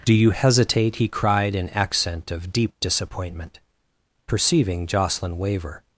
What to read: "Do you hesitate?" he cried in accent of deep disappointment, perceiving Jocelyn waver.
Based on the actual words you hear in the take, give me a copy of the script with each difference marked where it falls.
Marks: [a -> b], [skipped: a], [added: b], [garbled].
"Do you hesitate?" he cried in accent of deep disappointment, perceiving Jocelyn waver.